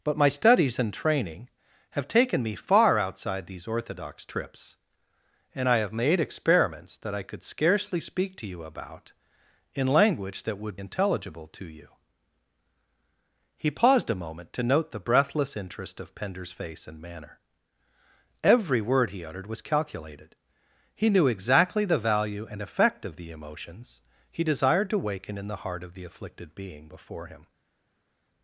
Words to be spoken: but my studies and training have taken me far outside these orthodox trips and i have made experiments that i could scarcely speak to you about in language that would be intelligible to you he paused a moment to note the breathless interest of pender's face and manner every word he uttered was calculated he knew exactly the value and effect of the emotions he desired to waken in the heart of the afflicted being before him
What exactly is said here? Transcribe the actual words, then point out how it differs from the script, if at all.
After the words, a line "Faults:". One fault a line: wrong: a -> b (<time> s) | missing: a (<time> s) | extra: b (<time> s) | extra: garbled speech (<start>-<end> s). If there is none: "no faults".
but my studies and training have taken me far outside these orthodox trips and i have made experiments that i could scarcely speak to you about in language that would intelligible to you he paused a moment to note the breathless interest of pender's face and manner every word he uttered was calculated he knew exactly the value and effect of the emotions he desired to waken in the heart of the afflicted being before him
Faults:
missing: be (10.8 s)